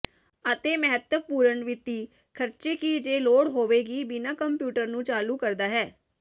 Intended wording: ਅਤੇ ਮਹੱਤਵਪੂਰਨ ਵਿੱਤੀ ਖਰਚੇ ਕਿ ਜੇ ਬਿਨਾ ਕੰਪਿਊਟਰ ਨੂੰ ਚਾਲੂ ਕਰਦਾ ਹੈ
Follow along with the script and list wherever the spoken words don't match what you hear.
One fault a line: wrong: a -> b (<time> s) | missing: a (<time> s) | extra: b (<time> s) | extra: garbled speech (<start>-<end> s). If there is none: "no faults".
extra: ਲੋੜ ਹੋਵੇਗੀ (3.2 s)